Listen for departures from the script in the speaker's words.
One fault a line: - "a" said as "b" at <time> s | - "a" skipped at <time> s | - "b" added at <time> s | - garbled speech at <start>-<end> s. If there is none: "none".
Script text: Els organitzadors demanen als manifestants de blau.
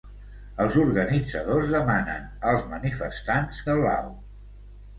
none